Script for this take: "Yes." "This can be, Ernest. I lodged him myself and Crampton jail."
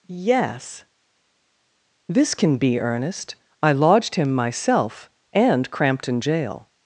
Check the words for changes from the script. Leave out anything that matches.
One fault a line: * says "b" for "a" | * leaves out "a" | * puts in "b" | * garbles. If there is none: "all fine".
all fine